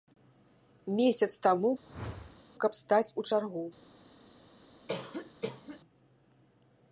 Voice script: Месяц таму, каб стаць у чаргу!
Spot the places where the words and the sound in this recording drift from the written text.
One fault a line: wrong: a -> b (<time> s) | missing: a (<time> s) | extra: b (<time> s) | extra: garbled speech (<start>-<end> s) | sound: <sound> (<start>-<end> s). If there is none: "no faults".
sound: whoosh (1.8-2.4 s)
sound: cough (4.9-5.8 s)